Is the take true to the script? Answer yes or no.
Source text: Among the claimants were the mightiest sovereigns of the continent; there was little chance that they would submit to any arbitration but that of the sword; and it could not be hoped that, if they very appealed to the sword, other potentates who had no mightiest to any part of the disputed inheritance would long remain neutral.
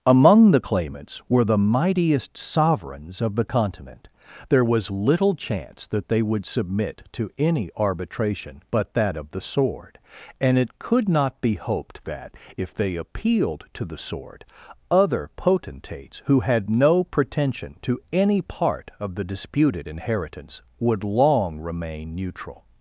no